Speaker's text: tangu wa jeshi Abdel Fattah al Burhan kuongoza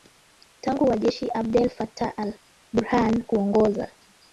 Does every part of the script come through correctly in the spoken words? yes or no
yes